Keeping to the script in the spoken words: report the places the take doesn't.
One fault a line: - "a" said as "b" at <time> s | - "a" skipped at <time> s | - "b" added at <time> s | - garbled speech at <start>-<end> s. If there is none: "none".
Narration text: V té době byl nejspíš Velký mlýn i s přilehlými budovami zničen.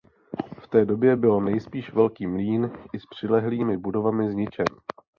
none